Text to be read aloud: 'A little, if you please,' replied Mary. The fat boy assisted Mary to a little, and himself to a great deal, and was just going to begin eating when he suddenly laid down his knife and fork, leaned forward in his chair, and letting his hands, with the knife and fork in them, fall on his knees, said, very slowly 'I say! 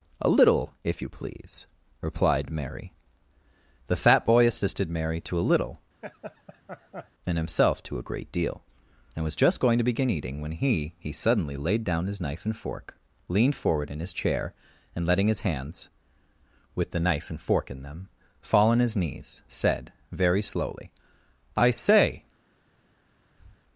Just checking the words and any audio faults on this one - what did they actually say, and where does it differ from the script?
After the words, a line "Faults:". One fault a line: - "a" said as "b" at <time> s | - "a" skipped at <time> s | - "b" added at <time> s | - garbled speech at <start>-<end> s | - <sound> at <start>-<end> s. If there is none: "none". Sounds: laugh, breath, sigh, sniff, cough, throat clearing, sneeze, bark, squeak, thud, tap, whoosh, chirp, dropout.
'A little, if you please,' replied Mary. The fat boy assisted Mary to a little, and himself to a great deal, and was just going to begin eating when he he suddenly laid down his knife and fork, leaned forward in his chair, and letting his hands, with the knife and fork in them, fall on his knees, said, very slowly 'I say!
Faults:
- laugh at 6.0-7.1 s
- "he" added at 11.0 s
- breath at 23.4-23.6 s